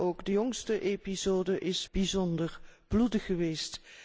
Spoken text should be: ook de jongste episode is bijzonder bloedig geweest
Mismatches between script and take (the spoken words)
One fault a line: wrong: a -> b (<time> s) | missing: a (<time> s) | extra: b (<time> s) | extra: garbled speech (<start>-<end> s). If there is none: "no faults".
no faults